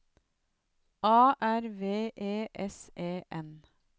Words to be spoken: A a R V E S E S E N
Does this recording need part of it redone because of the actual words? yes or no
yes